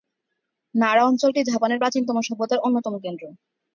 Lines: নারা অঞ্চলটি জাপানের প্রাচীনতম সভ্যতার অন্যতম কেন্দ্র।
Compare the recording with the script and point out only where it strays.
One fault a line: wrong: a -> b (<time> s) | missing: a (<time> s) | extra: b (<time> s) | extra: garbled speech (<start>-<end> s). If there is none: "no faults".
no faults